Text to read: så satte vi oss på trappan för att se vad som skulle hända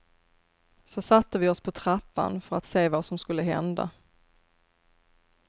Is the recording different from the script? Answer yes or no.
no